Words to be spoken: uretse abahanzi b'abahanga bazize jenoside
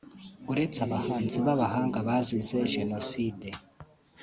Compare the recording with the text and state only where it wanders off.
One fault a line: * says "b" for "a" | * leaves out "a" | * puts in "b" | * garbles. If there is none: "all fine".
all fine